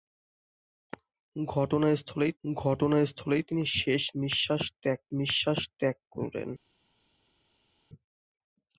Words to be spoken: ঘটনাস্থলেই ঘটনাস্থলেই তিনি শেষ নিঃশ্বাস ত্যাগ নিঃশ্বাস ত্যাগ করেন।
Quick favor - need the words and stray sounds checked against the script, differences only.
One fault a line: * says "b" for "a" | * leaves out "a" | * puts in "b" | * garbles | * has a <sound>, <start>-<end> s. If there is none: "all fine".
all fine